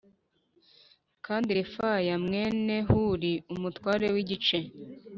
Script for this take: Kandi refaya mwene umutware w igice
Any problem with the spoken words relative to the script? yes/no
yes